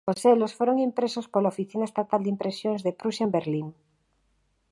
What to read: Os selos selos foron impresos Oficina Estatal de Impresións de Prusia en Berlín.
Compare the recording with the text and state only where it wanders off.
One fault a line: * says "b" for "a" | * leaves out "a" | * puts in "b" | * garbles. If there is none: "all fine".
* leaves out "selos"
* puts in "pola"